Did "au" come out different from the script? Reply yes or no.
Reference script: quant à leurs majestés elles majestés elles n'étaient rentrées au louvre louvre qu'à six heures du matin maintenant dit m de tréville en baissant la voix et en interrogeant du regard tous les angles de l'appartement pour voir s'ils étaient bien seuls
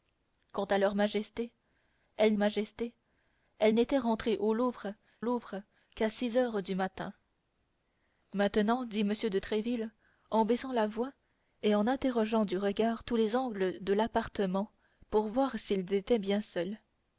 no